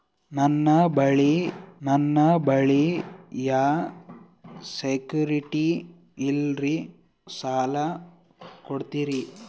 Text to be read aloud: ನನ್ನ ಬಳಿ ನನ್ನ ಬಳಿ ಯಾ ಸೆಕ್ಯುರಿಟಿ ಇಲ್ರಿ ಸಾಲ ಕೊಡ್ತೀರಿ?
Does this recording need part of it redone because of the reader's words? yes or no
no